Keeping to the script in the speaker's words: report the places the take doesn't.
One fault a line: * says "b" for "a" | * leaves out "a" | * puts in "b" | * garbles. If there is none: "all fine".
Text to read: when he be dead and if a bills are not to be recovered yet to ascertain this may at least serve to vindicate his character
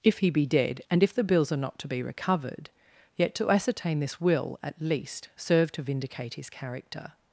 * says "if" for "when"
* says "the" for "a"
* says "will" for "may"